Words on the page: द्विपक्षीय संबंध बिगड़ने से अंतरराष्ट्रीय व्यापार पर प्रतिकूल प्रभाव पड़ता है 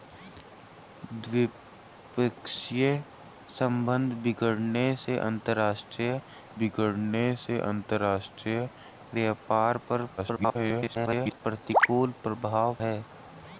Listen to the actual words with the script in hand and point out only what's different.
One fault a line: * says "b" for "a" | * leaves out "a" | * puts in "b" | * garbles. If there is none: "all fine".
* puts in "बिगड़ने से अंतरराष्ट्रीय"
* garbles
* leaves out "पड़ता"